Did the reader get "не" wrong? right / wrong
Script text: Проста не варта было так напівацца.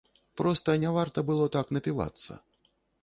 right